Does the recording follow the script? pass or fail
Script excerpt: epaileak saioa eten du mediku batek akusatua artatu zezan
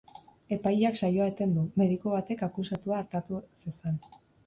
pass